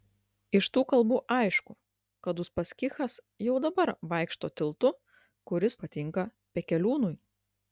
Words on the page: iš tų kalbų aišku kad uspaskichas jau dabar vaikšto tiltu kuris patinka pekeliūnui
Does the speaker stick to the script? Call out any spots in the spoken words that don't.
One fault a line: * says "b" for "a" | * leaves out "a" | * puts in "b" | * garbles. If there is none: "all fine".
all fine